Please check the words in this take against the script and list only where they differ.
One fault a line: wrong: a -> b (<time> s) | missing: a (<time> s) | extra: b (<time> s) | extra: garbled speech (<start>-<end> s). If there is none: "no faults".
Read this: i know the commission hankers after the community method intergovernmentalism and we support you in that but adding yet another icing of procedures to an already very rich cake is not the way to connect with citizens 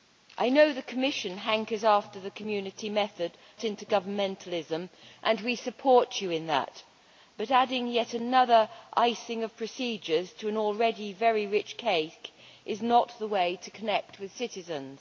no faults